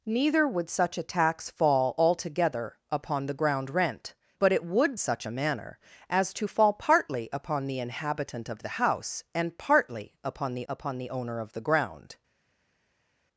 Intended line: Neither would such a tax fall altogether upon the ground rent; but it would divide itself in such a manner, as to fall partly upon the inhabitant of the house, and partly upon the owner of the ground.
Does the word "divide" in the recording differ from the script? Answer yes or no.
yes